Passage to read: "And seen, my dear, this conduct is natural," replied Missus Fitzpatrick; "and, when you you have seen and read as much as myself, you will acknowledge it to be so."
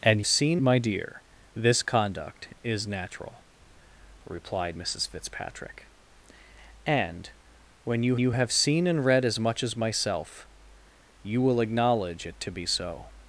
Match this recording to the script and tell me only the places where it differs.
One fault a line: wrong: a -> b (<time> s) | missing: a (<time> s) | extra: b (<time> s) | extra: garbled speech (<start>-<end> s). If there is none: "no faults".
no faults